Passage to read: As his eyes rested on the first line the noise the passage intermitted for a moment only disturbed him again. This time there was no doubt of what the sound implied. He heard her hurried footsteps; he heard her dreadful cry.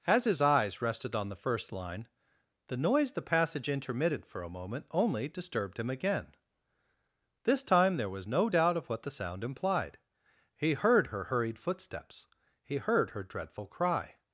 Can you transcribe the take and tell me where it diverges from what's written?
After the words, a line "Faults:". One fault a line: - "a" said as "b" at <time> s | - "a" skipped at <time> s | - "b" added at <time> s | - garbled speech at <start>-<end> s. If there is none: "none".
As his eyes rested on the first line the noise the passage intermitted for a moment only disturbed him again. This time there was no doubt of what the sound implied. He heard her hurried footsteps; he heard her dreadful cry.
Faults:
none